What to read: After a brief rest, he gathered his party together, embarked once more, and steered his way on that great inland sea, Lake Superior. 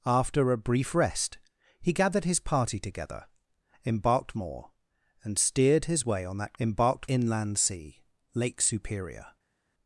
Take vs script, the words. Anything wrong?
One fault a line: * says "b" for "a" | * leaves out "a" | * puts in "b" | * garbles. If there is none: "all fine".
* leaves out "once"
* says "embarked" for "great"